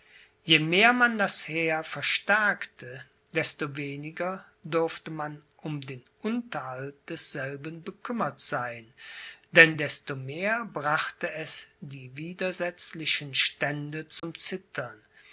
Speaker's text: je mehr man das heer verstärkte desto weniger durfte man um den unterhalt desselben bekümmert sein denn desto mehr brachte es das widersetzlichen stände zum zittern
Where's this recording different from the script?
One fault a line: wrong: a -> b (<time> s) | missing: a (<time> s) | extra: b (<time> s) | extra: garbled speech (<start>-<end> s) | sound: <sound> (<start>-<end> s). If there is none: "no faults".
wrong: das -> die (11.8 s)
sound: dropout (14.2-14.2 s)